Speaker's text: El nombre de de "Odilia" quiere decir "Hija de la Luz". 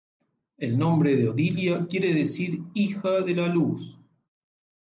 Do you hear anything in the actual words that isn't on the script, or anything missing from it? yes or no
yes